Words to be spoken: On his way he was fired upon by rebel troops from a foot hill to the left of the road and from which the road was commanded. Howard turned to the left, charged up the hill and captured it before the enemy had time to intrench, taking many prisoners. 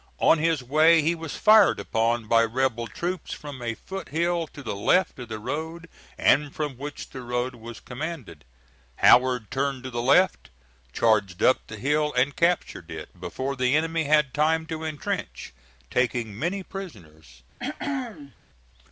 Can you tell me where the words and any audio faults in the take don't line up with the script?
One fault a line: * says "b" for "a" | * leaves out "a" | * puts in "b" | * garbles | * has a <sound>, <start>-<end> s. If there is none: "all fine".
* has a throat clearing, 17.6-18.4 s